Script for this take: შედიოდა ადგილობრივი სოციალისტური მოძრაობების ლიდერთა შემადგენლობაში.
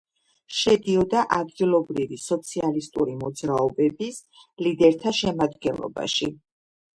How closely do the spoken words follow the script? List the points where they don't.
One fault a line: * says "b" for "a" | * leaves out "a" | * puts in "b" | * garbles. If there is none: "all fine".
all fine